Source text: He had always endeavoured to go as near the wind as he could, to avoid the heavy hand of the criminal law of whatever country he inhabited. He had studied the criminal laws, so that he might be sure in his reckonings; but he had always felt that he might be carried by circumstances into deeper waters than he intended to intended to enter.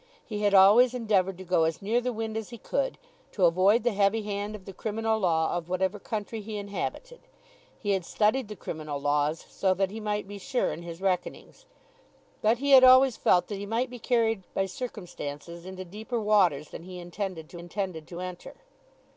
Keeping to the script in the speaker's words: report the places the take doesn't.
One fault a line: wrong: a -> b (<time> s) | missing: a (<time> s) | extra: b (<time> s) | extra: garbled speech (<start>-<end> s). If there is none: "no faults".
no faults